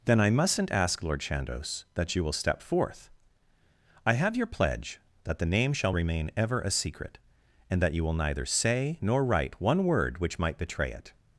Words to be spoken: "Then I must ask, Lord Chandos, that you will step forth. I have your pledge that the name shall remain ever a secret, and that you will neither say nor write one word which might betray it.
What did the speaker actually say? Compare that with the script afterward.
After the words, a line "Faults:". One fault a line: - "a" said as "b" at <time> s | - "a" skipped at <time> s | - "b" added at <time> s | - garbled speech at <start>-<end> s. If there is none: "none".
"Then I mustn't ask, Lord Chandos, that you will step forth. I have your pledge that the name shall remain ever a secret, and that you will neither say nor write one word which might betray it.
Faults:
- "must" said as "mustn't" at 0.3 s